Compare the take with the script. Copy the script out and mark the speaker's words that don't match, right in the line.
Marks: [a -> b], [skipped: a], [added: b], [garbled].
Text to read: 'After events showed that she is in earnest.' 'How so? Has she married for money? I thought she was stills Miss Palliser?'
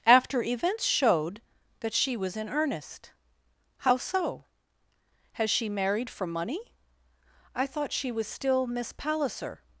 'After events showed that she [is -> was] in earnest.' 'How so? Has she married for money? I thought she was [stills -> still] Miss Palliser?'